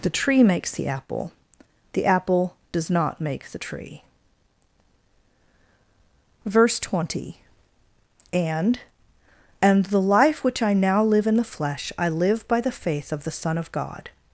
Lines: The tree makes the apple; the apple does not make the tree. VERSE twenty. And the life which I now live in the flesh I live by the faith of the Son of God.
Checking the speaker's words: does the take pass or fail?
fail